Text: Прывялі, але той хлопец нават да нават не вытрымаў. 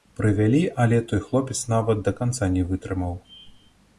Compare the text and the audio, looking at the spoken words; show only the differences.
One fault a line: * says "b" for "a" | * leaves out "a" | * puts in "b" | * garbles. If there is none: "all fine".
* says "канца" for "нават"